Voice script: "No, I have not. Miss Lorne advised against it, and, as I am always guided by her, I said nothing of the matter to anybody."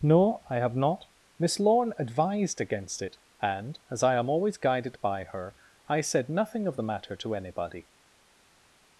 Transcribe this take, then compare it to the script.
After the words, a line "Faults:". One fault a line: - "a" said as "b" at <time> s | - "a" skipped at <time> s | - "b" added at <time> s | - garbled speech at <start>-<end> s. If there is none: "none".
"No, I have not. Miss Lorne advised against it, and, as I am always guided by her, I said nothing of the matter to anybody."
Faults:
none